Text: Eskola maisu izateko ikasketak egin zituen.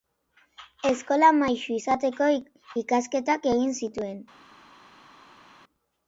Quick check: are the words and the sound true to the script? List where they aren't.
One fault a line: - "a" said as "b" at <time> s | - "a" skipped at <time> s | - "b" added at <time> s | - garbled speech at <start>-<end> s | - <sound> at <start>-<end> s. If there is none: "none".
none